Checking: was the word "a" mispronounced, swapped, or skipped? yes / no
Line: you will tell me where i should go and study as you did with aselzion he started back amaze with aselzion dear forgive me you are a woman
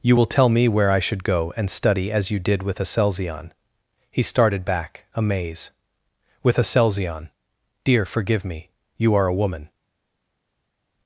no